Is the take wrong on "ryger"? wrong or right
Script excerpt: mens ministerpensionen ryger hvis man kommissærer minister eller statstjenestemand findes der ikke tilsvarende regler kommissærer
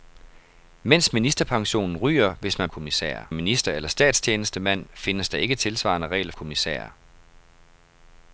right